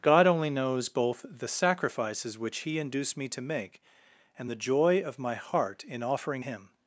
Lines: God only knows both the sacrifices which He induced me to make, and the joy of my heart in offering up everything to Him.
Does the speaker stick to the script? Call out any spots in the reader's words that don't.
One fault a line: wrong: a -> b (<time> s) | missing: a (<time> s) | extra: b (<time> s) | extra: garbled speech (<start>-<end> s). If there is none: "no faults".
missing: up everything to (6.4 s)